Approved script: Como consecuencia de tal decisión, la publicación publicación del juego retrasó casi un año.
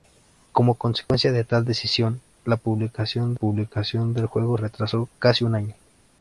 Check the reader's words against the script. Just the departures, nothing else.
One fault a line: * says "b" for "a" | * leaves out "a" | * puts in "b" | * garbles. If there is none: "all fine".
all fine